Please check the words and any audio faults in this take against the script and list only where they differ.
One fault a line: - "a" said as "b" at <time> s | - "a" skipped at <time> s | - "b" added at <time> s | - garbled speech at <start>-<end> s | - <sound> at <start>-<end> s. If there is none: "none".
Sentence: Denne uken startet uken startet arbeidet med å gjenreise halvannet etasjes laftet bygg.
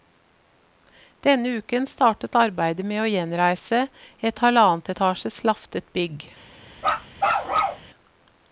- "uken startet" skipped at 2.4 s
- "et" added at 4.3 s
- bark at 6.8-7.9 s